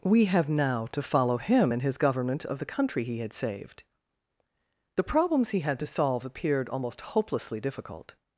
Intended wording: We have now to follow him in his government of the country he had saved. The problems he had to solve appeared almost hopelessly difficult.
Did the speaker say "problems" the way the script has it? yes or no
yes